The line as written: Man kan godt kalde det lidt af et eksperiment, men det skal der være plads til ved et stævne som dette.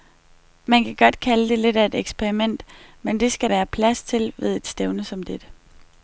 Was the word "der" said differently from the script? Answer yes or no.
yes